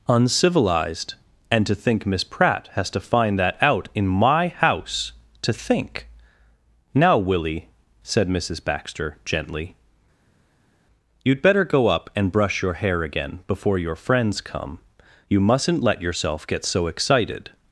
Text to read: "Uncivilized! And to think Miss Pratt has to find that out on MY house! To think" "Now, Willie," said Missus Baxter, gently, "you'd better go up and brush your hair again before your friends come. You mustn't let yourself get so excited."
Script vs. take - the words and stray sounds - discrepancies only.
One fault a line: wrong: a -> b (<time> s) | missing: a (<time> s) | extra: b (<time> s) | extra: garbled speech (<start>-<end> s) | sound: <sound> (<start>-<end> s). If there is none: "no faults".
wrong: on -> in (3.9 s)